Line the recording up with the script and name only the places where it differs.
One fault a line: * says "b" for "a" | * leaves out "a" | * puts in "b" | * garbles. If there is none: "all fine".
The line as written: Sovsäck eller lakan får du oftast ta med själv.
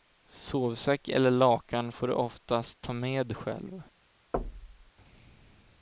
all fine